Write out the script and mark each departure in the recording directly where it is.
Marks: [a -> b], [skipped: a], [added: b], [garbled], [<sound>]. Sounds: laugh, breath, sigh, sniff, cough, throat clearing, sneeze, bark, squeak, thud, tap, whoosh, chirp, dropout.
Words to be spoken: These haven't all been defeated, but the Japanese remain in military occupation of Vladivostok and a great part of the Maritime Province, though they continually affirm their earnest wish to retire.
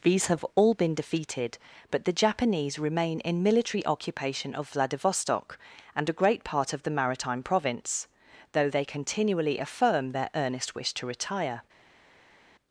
These [haven't -> have] all been defeated, but the Japanese remain in military occupation of Vladivostok and a great part of the Maritime Province, though they continually affirm their earnest wish to retire.